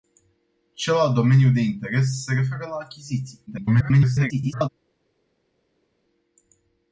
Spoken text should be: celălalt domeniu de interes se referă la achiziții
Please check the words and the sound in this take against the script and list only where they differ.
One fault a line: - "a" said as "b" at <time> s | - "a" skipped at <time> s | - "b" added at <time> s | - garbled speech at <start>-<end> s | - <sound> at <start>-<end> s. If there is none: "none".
- garbled speech at 3.5-4.7 s